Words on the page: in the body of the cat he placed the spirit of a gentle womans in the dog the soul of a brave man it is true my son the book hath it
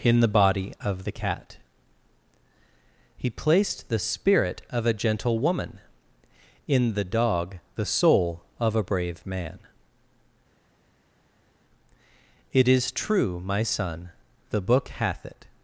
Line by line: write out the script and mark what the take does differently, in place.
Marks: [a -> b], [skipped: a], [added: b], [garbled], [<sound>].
in the body of the cat he placed the spirit of a gentle [womans -> woman] in the dog the soul of a brave man it is true my son the book hath it